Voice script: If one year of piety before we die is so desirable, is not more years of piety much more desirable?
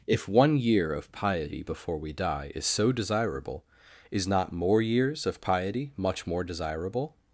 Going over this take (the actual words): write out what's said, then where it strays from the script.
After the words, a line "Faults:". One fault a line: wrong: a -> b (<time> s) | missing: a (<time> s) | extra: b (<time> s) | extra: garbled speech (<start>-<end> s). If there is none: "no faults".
If one year of piety before we die is so desirable, is not more years of piety much more desirable?
Faults:
no faults